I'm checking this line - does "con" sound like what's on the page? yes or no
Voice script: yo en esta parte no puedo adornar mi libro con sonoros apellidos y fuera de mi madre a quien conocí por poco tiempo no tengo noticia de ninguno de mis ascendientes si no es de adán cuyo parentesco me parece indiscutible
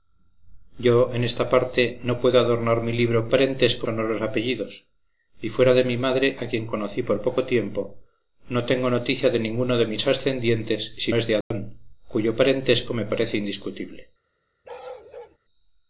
no